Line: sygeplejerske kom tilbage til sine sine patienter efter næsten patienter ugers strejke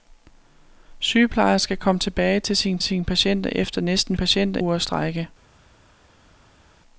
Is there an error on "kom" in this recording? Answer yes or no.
no